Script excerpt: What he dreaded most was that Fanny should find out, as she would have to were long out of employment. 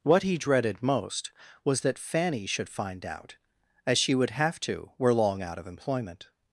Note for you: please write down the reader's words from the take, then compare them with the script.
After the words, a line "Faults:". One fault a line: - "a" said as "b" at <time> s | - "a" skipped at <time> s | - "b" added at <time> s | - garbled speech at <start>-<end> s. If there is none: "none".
What he dreaded most was that Fanny should find out, as she would have to were long out of employment.
Faults:
none